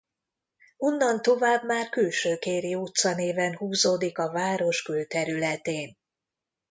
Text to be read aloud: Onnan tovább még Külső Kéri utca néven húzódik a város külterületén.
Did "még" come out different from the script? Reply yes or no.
yes